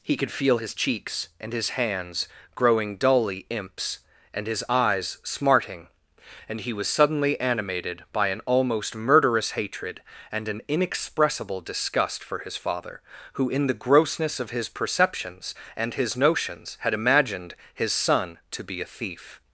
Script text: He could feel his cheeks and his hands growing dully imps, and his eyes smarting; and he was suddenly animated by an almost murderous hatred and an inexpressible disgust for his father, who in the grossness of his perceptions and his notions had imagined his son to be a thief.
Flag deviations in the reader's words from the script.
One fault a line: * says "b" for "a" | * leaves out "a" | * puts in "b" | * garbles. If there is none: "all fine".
all fine